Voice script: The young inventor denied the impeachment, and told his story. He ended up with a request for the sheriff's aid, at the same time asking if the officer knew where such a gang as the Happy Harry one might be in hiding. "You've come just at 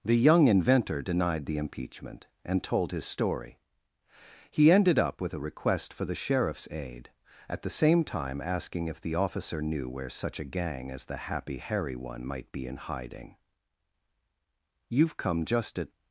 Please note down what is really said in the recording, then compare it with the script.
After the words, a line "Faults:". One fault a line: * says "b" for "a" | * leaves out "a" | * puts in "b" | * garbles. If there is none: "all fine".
The young inventor denied the impeachment, and told his story. He ended up with a request for the sheriff's aid, at the same time asking if the officer knew where such a gang as the Happy Harry one might be in hiding. "You've come just at
Faults:
all fine